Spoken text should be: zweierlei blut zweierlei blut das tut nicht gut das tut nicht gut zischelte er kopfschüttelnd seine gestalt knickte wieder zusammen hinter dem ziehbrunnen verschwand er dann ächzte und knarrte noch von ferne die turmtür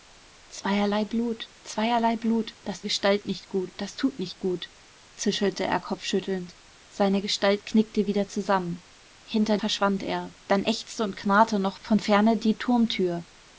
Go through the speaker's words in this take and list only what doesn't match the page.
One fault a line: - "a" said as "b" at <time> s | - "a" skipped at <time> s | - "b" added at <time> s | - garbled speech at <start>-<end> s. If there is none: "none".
- "tut" said as "gestalt" at 2.8 s
- "dem ziehbrunnen" skipped at 9.6 s